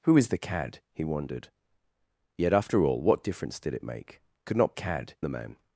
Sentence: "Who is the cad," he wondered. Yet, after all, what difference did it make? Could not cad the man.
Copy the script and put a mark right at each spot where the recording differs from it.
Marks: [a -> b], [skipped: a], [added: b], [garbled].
"Who is the cad," he wondered. Yet, after all, what difference did it make? Could not cad the man.